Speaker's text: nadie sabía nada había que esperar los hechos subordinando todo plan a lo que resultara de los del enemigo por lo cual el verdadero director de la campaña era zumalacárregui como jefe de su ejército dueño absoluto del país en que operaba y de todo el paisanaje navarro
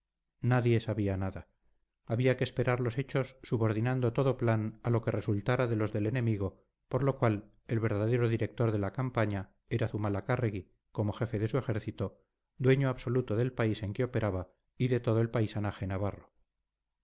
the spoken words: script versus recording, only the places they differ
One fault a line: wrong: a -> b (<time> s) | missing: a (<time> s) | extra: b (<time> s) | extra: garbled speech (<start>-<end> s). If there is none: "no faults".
no faults